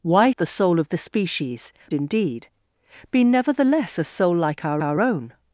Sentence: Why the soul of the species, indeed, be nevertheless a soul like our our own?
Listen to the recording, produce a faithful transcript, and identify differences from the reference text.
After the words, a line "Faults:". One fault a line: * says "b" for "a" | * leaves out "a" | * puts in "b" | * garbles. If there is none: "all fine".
Why the soul of the species, indeed, be nevertheless a soul like our our own?
Faults:
all fine